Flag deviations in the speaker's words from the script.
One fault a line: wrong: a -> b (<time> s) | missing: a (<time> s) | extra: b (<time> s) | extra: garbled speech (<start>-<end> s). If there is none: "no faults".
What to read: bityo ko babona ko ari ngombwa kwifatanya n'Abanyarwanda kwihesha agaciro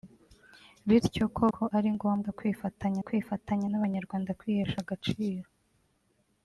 missing: babona (1.4 s)
extra: kwifatanya (3.1 s)